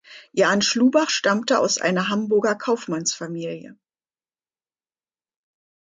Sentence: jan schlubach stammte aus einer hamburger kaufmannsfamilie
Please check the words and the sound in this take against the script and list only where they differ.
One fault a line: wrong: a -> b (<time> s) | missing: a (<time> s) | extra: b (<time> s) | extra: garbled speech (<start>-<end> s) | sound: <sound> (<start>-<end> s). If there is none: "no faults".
no faults